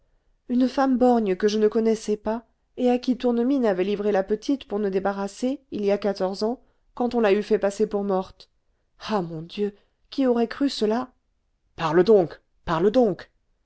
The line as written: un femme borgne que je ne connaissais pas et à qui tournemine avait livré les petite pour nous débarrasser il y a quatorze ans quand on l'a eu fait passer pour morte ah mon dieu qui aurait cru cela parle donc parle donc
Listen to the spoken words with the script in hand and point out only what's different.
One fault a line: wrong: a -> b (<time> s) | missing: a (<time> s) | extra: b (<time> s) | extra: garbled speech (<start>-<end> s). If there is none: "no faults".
wrong: un -> une (0.5 s)
wrong: les -> la (4.1 s)